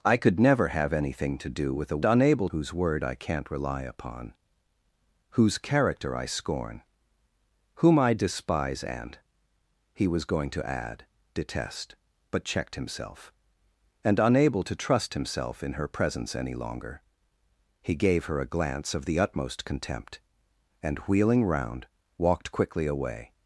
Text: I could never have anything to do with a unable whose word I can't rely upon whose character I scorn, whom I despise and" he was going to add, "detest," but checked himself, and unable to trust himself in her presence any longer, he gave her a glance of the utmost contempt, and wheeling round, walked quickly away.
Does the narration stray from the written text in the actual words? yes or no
no